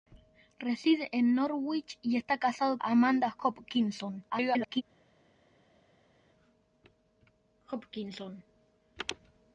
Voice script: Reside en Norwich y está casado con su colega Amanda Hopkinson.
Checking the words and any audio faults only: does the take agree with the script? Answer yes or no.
no